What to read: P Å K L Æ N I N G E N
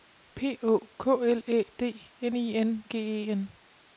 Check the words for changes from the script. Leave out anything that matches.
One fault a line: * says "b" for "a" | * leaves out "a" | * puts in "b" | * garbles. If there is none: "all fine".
* puts in "D"